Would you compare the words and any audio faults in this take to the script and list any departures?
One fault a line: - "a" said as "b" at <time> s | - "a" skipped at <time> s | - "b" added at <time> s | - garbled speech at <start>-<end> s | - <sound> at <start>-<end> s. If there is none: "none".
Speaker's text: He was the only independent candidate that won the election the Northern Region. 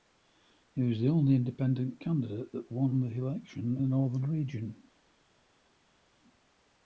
none